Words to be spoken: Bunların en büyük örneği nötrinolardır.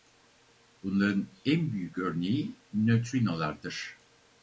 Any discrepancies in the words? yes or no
no